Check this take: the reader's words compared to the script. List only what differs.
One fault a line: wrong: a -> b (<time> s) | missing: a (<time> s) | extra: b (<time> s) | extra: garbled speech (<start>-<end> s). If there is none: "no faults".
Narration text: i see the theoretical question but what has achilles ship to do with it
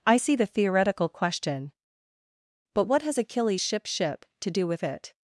extra: ship (3.9 s)